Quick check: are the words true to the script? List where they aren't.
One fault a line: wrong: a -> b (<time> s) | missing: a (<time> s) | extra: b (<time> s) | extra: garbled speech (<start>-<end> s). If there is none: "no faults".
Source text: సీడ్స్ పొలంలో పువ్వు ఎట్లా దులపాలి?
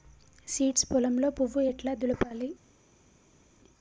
no faults